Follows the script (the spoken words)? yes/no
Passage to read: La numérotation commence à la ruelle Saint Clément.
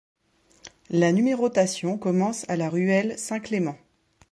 yes